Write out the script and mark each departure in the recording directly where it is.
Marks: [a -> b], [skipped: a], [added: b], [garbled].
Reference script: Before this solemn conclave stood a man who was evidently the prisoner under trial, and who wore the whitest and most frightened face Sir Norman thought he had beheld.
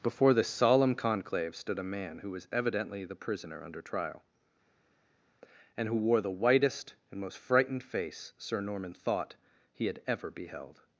Before this solemn conclave stood a man who was evidently the prisoner under trial, and who wore the whitest and most frightened face Sir Norman thought he had [added: ever] beheld.